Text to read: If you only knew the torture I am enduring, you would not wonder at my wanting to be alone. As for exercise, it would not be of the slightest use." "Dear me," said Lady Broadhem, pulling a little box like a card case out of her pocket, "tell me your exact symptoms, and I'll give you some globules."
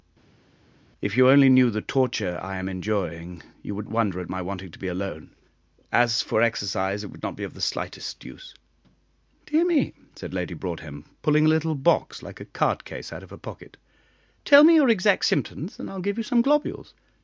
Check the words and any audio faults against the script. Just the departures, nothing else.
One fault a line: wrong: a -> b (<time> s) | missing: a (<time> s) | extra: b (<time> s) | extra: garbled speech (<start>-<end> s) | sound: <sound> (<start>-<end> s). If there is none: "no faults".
missing: not (3.9 s)